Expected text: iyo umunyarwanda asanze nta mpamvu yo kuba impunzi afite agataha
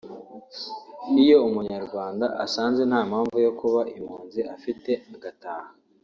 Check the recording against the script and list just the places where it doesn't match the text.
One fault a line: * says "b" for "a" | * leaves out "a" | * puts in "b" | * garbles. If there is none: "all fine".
all fine